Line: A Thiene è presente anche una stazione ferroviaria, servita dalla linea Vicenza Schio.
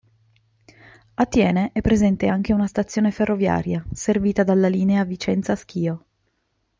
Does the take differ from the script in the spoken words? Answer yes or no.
no